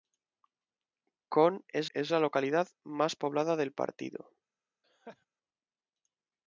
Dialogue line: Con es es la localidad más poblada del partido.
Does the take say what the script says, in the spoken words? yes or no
yes